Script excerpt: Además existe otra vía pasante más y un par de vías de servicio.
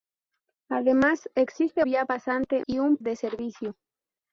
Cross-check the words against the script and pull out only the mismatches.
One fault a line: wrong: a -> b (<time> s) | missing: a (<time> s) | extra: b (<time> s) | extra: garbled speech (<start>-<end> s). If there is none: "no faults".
missing: otra (1.9 s)
missing: más (2.7 s)
missing: par de vías (3.0 s)